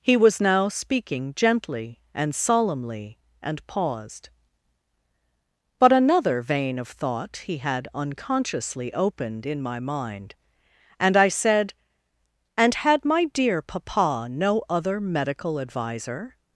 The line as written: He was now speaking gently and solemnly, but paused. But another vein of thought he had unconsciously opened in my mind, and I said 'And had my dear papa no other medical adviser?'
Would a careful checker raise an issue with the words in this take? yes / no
yes